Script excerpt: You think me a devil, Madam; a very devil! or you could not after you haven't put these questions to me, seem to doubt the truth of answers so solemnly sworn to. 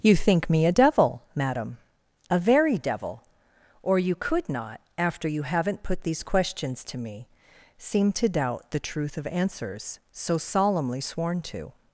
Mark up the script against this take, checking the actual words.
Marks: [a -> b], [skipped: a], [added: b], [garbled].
You think me a devil, Madam; a very devil! or you could not after you haven't put these questions to me, seem to doubt the truth of answers so solemnly sworn to.